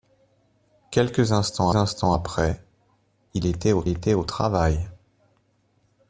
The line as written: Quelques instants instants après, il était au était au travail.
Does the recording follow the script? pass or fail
pass